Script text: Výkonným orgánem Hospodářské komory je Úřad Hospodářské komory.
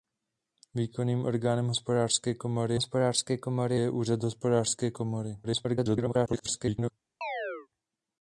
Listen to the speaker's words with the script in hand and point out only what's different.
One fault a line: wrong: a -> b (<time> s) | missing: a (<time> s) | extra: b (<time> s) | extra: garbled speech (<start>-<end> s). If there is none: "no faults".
extra: Hospodářské komory (2.7 s)
extra: garbled speech (5.4-6.9 s)